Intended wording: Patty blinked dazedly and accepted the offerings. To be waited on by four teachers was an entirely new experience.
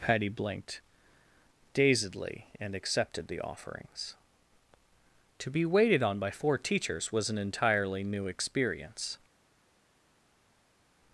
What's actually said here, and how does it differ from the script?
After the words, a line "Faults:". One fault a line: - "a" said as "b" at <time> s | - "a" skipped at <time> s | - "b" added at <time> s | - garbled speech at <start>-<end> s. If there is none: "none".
Patty blinked dazedly and accepted the offerings. To be waited on by four teachers was an entirely new experience.
Faults:
none